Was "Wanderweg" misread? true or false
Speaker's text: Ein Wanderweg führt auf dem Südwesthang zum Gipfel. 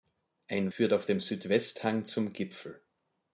true